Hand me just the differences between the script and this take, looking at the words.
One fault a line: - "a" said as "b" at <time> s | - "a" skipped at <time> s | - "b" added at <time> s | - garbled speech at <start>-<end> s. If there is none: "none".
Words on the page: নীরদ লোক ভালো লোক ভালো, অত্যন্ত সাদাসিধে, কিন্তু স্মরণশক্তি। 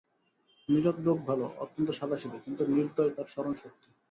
- "লোক ভালো" skipped at 1.4 s
- "নির্দয় তার" added at 2.7 s